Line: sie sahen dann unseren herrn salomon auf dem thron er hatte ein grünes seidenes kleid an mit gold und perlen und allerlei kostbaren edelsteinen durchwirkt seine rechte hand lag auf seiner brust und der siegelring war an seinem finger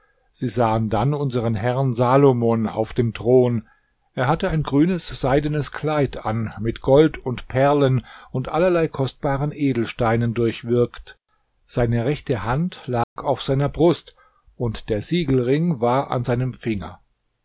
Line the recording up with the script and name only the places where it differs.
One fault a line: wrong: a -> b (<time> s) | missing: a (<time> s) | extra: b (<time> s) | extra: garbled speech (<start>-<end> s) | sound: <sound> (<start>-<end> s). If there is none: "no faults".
sound: dropout (13.0-13.2 s)